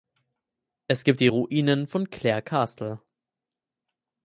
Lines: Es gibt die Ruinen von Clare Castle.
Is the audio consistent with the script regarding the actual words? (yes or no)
yes